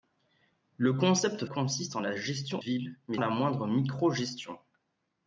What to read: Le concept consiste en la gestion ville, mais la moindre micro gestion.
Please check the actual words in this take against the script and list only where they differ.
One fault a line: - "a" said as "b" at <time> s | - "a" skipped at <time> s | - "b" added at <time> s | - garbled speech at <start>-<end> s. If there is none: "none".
none